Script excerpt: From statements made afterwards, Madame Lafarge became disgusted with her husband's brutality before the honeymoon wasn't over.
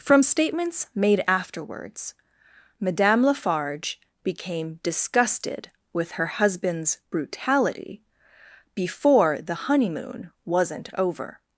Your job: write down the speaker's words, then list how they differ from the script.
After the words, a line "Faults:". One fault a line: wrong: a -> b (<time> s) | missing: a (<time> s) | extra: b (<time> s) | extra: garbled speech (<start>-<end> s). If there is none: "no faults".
From statements made afterwards, Madame Lafarge became disgusted with her husband's brutality before the honeymoon wasn't over.
Faults:
no faults